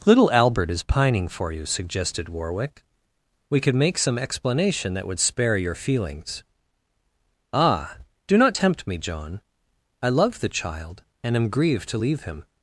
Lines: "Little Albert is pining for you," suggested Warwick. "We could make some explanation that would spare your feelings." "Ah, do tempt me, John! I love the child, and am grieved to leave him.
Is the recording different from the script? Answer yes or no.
yes